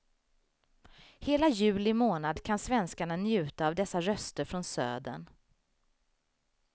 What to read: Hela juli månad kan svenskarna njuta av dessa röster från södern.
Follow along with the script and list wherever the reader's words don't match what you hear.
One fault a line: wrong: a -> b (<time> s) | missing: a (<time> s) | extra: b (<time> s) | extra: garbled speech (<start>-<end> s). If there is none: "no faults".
no faults